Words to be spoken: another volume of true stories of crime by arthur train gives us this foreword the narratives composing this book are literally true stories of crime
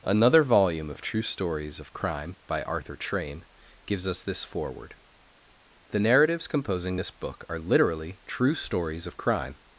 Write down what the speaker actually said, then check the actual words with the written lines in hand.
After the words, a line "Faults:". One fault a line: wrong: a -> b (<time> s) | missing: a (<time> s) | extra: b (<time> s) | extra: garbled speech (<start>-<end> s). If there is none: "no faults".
another volume of true stories of crime by arthur train gives us this foreword the narratives composing this book are literally true stories of crime
Faults:
no faults